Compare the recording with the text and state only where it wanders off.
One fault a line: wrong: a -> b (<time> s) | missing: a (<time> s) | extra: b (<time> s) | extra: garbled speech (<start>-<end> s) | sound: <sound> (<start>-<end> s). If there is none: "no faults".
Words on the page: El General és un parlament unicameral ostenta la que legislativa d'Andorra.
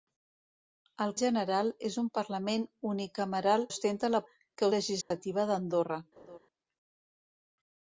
sound: dropout (5.0-5.1 s)
sound: laugh (6.2-6.4 s)